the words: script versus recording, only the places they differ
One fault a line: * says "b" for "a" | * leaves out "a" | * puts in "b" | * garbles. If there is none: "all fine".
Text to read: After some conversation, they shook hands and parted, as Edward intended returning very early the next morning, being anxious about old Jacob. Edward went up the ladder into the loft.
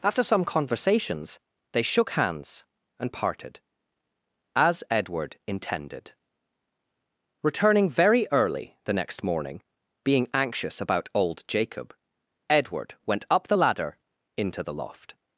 * says "conversations" for "conversation"